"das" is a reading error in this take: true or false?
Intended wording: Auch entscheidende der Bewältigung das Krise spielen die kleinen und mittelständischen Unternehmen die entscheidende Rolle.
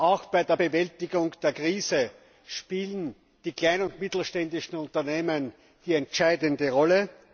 true